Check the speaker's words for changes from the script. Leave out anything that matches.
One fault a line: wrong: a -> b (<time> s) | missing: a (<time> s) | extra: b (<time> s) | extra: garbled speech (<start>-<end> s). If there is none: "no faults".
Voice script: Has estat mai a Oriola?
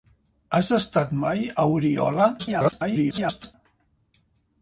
extra: garbled speech (2.4-3.5 s)